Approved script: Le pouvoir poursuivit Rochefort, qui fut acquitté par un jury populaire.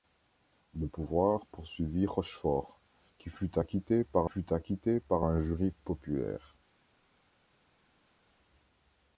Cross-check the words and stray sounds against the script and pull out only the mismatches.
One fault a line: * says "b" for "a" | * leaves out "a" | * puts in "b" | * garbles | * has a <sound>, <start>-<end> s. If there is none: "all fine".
* puts in "fut acquitté par"